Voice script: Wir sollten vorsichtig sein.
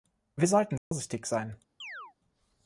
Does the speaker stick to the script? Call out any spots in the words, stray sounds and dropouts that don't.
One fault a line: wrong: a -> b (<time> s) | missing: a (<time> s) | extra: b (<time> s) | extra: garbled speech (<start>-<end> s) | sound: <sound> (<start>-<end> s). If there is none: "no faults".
sound: dropout (0.8-0.9 s)
sound: chirp (1.8-2.1 s)